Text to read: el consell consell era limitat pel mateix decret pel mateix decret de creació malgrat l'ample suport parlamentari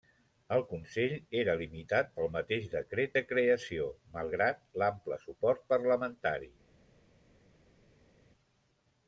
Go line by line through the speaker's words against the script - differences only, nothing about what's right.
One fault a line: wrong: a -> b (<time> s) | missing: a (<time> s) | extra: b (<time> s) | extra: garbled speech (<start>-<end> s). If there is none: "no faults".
missing: consell (1.1 s)
missing: pel mateix decret (3.1 s)